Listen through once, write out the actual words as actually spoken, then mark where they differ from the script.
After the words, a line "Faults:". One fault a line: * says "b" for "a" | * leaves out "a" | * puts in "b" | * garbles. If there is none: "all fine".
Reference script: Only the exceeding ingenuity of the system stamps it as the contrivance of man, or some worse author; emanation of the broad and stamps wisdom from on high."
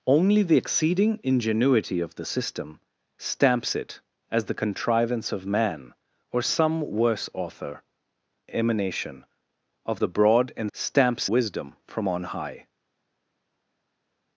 Only the exceeding ingenuity of the system stamps it as the contrivance of man, or some worse author; emanation of the broad and stamps wisdom from on high."
Faults:
all fine